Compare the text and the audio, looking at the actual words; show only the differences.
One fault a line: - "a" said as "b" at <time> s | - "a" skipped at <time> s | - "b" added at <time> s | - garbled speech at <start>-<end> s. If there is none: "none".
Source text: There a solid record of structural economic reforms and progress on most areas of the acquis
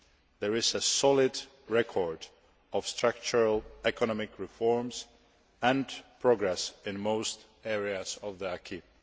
- "is" added at 0.6 s
- "on" said as "in" at 6.8 s